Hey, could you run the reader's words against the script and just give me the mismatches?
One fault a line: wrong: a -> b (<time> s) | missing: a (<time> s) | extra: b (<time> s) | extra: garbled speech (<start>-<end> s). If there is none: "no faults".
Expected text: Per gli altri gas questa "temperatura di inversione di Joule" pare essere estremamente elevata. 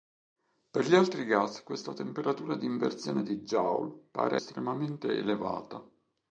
missing: essere (4.4 s)